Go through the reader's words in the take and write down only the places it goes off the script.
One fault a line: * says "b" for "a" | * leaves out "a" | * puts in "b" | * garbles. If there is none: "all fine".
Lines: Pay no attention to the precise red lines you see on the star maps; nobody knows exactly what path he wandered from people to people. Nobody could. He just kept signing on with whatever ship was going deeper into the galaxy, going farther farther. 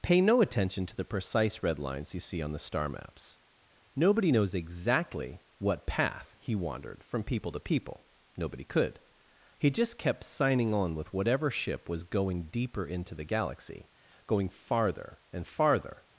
* puts in "and"